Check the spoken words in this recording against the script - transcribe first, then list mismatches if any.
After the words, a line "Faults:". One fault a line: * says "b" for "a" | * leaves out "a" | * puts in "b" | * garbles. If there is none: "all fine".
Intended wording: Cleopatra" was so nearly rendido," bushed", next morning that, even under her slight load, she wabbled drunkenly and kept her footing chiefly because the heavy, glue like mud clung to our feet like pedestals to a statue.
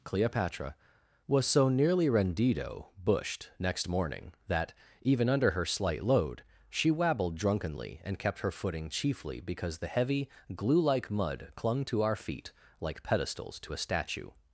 Cleopatra" was so nearly rendido," bushed", next morning that, even under her slight load, she wabbled drunkenly and kept her footing chiefly because the heavy, glue like mud clung to our feet like pedestals to a statue.
Faults:
all fine